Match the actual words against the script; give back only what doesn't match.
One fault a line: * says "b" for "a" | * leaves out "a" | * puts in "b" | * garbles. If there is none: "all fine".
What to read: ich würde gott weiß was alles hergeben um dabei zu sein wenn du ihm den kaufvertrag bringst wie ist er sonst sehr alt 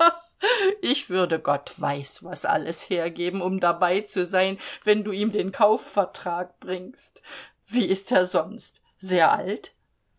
all fine